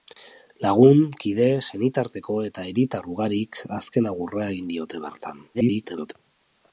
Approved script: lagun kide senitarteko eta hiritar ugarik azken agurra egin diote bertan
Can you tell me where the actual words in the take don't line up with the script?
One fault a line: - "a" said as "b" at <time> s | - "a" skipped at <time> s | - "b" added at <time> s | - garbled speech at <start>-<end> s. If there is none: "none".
- garbled speech at 5.5-6.1 s